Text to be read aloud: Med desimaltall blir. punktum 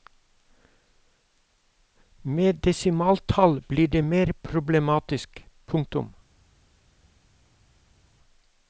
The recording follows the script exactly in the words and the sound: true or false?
false